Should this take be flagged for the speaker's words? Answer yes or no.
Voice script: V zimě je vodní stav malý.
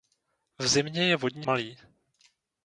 yes